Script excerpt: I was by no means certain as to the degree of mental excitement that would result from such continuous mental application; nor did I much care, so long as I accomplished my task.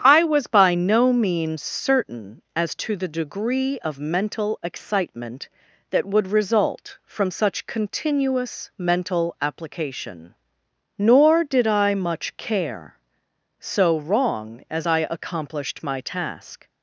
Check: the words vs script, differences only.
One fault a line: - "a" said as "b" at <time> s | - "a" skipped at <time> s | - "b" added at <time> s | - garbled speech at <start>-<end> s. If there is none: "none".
- "long" said as "wrong" at 14.0 s